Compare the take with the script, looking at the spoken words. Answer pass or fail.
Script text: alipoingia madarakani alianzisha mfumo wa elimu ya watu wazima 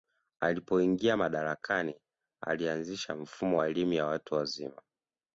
pass